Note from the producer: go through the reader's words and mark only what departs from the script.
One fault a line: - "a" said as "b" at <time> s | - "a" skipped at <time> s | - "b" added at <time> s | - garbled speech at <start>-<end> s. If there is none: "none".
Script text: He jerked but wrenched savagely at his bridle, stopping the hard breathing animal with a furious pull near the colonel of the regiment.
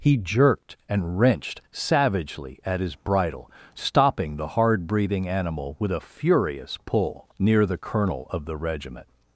- "but" said as "and" at 0.9 s